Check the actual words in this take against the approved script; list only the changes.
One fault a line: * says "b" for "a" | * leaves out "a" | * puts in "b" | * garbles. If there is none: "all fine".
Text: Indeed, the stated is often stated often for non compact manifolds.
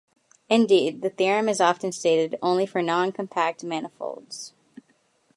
* says "theorem" for "stated"
* says "only" for "often"